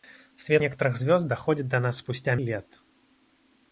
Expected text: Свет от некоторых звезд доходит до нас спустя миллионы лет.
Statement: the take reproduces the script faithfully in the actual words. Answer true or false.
false